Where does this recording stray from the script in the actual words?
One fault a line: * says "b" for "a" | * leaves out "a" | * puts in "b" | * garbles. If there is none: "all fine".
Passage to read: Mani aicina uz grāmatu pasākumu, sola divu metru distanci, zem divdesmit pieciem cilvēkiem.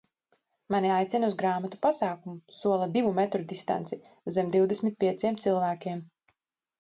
all fine